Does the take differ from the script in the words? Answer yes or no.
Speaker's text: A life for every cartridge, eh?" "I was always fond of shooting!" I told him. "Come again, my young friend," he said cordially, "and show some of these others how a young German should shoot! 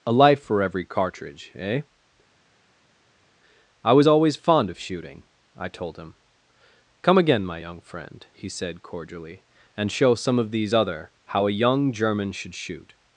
yes